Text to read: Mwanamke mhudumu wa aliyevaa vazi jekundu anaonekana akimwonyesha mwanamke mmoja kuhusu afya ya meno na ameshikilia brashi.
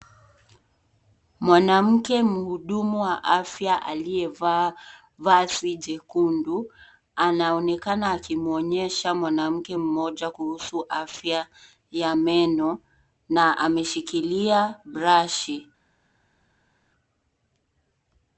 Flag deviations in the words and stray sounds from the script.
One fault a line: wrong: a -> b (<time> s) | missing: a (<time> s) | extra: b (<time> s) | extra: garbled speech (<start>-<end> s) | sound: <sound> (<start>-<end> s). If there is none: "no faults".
extra: afya (3.2 s)